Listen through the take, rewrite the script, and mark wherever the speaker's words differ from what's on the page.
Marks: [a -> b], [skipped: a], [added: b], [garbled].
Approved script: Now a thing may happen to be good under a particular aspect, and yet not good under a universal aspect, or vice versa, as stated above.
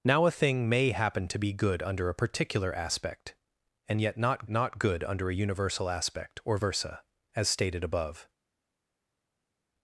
Now a thing may happen to be good under a particular aspect, and yet not [added: not] good under a universal aspect, or [skipped: vice] versa, as stated above.